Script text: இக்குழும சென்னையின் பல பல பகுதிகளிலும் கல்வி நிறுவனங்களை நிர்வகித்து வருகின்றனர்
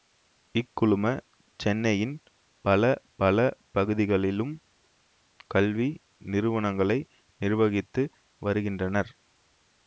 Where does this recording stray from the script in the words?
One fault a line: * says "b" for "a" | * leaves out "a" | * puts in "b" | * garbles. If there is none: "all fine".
all fine